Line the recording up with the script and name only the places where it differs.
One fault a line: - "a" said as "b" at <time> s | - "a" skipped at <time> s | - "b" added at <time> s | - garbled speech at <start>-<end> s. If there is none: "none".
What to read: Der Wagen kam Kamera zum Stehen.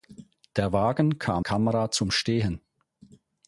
none